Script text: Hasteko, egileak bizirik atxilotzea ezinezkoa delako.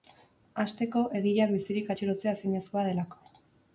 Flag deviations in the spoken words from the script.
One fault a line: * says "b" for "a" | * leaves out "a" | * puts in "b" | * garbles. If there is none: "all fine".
all fine